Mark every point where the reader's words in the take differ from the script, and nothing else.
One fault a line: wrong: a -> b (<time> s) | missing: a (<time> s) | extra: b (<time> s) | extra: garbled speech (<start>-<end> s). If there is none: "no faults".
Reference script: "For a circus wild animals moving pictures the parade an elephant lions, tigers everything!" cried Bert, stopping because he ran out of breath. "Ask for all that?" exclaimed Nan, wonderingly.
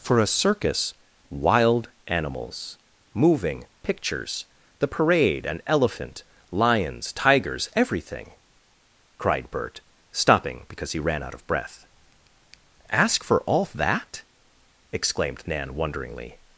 no faults